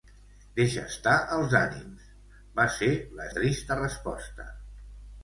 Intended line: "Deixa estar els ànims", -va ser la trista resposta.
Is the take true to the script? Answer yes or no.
yes